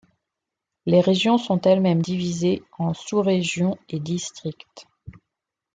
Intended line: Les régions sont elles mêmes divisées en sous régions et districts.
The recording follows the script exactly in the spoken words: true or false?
true